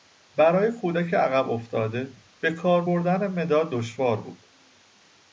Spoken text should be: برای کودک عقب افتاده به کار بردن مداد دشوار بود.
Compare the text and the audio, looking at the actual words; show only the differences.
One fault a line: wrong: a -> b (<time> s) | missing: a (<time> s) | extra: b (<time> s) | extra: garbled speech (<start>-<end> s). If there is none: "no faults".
no faults